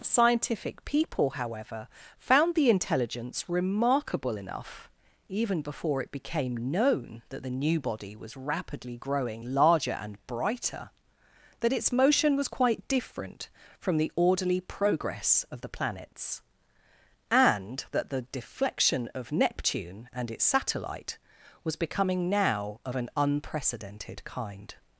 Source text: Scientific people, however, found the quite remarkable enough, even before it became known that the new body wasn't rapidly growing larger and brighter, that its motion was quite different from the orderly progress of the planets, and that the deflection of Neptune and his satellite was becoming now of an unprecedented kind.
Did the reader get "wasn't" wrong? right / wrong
wrong